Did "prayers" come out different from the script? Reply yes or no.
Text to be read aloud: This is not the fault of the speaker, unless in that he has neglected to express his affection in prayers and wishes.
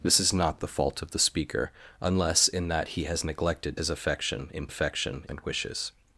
yes